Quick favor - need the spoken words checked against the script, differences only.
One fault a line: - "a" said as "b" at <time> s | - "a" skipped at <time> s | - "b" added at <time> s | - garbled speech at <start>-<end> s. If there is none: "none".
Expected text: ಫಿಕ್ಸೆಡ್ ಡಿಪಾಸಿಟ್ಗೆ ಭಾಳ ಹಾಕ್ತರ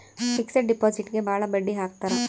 - "ಬಡ್ಡಿ" added at 1.5 s